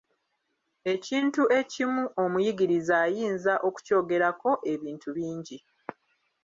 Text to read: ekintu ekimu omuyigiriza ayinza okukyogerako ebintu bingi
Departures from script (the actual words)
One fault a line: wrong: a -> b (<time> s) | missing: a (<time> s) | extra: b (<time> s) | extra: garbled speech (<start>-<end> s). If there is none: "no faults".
no faults